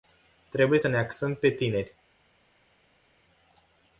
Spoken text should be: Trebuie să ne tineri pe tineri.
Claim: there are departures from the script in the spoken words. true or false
true